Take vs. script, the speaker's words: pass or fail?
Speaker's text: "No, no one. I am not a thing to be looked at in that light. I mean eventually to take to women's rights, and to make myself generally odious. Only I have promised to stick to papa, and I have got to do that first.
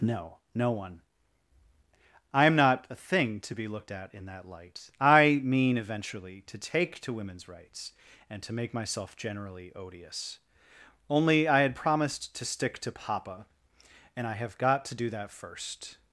fail